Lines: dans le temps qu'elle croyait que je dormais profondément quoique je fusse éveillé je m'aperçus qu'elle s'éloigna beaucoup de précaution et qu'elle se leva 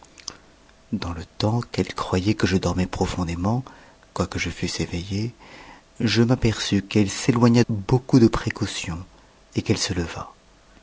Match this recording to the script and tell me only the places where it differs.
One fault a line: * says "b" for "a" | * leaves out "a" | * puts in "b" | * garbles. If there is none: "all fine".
all fine